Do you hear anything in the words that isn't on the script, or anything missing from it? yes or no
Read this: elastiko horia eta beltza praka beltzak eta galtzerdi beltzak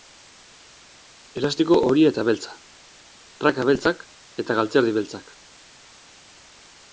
no